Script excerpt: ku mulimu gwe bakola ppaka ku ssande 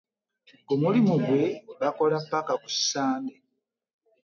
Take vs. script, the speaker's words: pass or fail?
pass